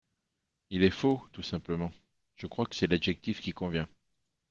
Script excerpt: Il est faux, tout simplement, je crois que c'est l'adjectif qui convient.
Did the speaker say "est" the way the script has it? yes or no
yes